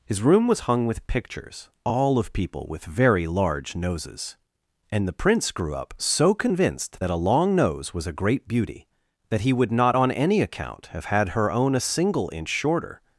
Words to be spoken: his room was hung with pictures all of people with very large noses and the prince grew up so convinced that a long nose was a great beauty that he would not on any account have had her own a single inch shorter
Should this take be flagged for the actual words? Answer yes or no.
no